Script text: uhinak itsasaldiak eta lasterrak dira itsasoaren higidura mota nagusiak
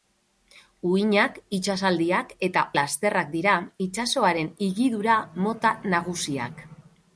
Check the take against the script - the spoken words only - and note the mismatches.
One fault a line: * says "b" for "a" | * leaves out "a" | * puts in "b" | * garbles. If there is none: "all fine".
all fine